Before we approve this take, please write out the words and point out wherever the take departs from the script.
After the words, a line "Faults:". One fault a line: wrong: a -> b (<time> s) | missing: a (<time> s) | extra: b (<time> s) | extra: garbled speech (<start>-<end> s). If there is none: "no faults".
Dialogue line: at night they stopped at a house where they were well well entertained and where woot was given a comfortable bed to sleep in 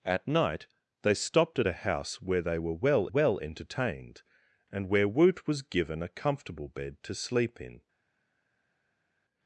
at night they stopped at a house where they were well well entertained and where woot was given a comfortable bed to sleep in
Faults:
no faults